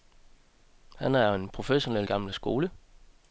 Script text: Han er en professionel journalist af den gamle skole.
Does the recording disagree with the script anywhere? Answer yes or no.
yes